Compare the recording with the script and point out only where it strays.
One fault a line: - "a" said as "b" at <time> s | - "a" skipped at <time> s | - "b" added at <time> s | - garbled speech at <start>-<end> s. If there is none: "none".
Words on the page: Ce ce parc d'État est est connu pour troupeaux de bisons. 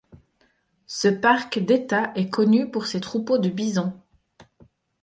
- "ce" skipped at 1.1 s
- "est" skipped at 2.3 s
- "ses" added at 2.9 s